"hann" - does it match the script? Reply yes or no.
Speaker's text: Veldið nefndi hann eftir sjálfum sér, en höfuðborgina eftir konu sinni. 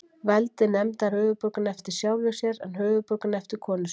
no